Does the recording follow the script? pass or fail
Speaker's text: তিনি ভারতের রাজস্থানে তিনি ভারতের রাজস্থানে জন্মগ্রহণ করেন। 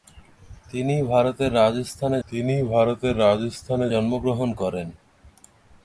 pass